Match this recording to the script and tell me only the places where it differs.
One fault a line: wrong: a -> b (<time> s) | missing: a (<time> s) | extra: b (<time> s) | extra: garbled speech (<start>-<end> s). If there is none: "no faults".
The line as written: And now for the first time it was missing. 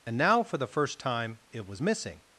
no faults